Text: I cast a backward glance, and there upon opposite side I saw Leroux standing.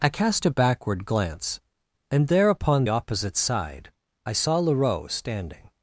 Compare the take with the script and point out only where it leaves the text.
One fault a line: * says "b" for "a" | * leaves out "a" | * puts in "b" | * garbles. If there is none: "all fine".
all fine